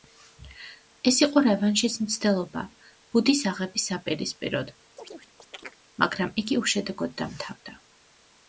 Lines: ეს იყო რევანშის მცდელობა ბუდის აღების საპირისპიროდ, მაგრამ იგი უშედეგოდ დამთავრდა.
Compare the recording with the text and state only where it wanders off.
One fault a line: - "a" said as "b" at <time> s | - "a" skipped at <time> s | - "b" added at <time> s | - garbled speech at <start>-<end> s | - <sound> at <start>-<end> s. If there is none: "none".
- chirp at 5.0-5.8 s